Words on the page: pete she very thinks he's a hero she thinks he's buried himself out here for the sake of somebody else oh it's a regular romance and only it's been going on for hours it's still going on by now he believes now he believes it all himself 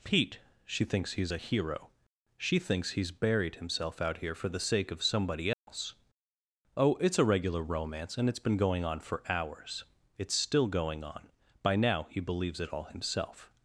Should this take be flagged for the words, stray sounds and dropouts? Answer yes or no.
yes